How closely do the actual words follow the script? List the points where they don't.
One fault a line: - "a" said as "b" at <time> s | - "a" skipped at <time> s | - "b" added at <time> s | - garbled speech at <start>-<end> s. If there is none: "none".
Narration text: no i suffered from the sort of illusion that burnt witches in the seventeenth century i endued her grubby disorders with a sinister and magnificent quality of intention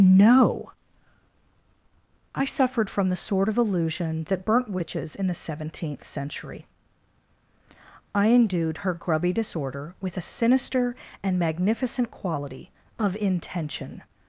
- "disorders" said as "disorder" at 9.3 s